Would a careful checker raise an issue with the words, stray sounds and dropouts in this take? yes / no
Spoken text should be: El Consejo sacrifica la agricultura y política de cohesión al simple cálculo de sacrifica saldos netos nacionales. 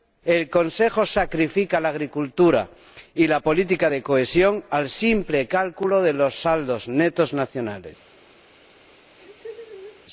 yes